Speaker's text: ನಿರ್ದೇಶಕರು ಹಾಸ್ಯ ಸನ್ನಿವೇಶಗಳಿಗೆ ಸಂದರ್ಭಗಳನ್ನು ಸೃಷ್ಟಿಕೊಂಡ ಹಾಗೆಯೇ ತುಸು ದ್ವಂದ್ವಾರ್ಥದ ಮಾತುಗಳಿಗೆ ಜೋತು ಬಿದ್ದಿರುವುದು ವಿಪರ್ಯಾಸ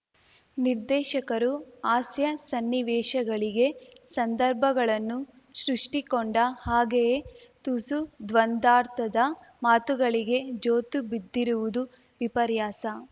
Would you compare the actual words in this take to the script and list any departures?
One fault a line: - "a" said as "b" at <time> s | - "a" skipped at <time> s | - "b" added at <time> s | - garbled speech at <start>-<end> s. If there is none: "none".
none